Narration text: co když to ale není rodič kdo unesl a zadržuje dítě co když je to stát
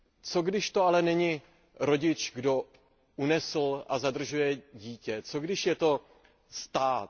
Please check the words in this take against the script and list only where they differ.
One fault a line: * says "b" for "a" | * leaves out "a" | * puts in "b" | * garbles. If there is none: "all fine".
all fine